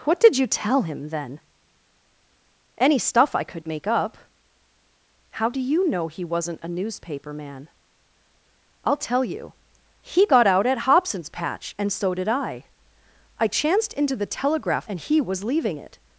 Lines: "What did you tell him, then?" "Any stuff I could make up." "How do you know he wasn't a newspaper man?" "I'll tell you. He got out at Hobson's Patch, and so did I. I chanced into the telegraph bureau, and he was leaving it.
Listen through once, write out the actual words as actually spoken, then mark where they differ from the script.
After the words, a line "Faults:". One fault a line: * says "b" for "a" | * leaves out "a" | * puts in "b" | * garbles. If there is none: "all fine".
"What did you tell him, then?" "Any stuff I could make up." "How do you know he wasn't a newspaper man?" "I'll tell you. He got out at Hobson's Patch, and so did I. I chanced into the telegraph and he was leaving it.
Faults:
* leaves out "bureau"